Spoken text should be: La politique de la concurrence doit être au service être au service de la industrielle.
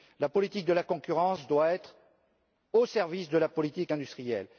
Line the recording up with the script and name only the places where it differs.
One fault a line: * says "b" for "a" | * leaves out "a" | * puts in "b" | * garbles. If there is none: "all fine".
* leaves out "être au service"
* puts in "politique"